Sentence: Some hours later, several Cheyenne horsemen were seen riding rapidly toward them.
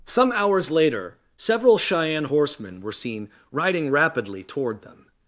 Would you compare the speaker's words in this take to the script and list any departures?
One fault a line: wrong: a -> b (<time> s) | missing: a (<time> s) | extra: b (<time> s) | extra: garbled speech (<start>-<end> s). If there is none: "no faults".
no faults